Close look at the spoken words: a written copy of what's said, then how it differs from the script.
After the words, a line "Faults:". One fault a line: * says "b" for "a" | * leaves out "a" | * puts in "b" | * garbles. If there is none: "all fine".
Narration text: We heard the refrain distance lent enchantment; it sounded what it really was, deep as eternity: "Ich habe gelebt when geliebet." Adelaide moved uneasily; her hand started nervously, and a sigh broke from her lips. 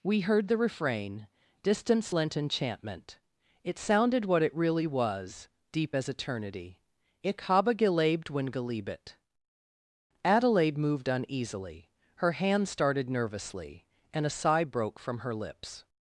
We heard the refrain distance lent enchantment; it sounded what it really was, deep as eternity: "Ich habe gelebt when geliebet." Adelaide moved uneasily; her hand started nervously, and a sigh broke from her lips.
Faults:
all fine